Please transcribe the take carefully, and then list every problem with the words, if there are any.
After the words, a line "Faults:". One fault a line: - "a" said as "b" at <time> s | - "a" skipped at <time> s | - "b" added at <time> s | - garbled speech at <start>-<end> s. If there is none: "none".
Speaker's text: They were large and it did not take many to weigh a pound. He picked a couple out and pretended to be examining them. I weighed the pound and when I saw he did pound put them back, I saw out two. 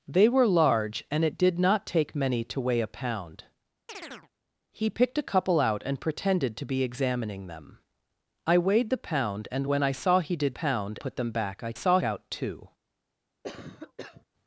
They were large and it did not take many to weigh a pound. He picked a couple out and pretended to be examining them. I weighed the pound and when I saw he did pound put them back, I saw out two.
Faults:
none